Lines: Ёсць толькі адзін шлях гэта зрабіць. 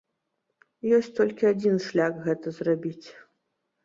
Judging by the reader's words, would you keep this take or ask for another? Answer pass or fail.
pass